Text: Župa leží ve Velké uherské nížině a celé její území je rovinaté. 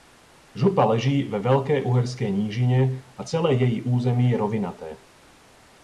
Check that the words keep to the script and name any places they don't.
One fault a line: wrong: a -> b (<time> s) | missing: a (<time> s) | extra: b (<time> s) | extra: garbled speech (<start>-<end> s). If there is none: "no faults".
no faults